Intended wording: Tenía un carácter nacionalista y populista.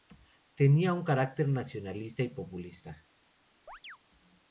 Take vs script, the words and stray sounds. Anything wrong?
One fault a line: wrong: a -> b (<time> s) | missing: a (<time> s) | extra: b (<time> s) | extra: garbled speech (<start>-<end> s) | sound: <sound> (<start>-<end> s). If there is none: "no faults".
sound: chirp (3.7-4.0 s)